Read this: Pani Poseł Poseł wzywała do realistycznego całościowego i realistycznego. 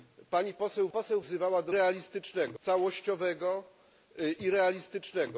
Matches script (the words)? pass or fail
pass